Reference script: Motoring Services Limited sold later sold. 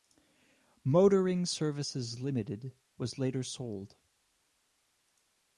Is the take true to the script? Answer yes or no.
no